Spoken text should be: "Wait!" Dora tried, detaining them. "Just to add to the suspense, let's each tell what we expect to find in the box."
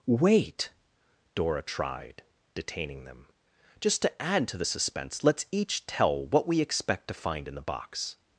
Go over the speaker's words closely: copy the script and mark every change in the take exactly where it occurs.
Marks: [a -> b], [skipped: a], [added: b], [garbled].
"Wait!" Dora tried, detaining them. "Just to add to the suspense, let's each tell what we expect to find in the box."